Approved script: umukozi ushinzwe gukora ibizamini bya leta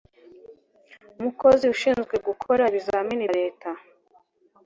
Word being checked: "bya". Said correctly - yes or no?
no